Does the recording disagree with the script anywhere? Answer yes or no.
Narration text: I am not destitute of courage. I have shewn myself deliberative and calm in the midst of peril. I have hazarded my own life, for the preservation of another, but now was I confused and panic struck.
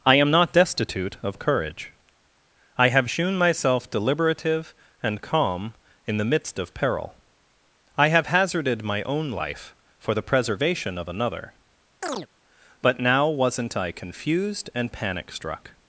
yes